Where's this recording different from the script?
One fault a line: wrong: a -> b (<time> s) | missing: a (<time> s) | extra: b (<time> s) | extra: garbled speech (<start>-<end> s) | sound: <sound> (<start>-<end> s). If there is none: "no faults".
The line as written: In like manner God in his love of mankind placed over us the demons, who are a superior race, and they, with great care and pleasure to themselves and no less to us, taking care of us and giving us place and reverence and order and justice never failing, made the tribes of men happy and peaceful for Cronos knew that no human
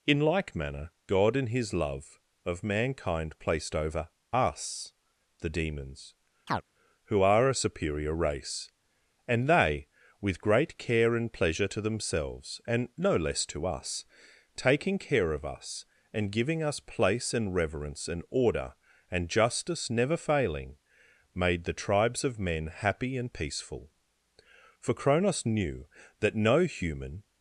sound: chirp (6.5-6.6 s)